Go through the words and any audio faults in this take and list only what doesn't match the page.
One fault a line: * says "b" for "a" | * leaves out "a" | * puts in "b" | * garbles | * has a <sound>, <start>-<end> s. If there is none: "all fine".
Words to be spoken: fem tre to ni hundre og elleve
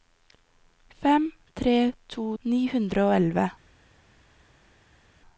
all fine